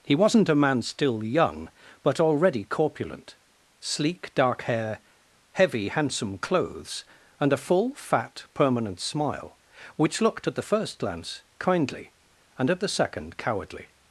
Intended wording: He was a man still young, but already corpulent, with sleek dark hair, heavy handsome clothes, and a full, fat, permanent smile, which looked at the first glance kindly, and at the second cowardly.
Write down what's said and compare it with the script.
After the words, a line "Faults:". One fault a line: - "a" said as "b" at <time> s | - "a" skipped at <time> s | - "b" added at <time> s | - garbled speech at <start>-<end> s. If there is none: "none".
He wasn't a man still young, but already corpulent, sleek dark hair, heavy handsome clothes, and a full, fat, permanent smile, which looked at the first glance kindly, and at the second cowardly.
Faults:
- "was" said as "wasn't" at 0.1 s
- "with" skipped at 3.4 s